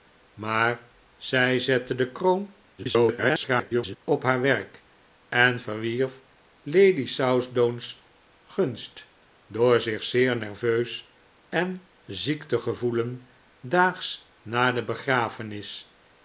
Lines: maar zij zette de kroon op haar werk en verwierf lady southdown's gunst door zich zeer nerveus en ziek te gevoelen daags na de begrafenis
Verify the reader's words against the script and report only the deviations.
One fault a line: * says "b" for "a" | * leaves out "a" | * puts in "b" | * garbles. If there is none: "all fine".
* garbles